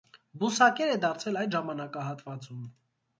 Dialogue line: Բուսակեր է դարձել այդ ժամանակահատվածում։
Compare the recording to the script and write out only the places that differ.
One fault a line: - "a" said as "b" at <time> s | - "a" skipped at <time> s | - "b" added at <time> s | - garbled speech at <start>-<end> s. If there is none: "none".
none